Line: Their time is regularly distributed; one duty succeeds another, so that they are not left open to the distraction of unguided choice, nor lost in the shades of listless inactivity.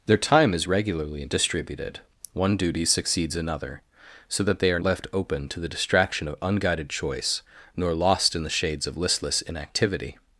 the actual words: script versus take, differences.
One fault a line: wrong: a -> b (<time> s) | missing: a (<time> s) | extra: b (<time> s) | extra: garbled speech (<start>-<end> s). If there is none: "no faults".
missing: not (4.8 s)